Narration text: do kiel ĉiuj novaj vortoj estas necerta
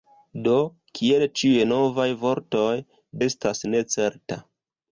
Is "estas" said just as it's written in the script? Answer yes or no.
yes